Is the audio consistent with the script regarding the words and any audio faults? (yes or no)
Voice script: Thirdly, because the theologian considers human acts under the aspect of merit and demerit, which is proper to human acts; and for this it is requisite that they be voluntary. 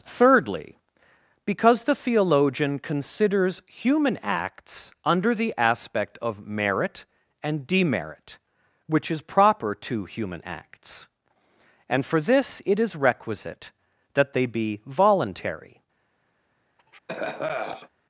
no